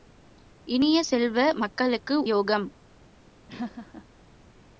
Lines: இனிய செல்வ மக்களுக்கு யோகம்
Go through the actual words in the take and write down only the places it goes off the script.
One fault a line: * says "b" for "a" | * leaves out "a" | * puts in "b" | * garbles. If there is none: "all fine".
all fine